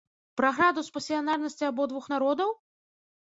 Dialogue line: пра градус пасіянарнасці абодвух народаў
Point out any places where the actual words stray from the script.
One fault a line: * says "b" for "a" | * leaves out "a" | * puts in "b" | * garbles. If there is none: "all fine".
all fine